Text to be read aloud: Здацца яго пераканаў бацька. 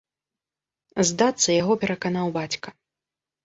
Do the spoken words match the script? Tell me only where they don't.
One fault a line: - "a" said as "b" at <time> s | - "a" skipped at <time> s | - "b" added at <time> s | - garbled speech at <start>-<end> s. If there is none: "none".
none